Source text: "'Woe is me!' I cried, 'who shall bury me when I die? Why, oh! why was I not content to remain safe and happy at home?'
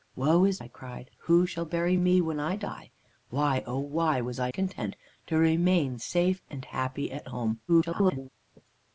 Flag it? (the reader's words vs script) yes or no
yes